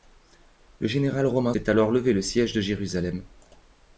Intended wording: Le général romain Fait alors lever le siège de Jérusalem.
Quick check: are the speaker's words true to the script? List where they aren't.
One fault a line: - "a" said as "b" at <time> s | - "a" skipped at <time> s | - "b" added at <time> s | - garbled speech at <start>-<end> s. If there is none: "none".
none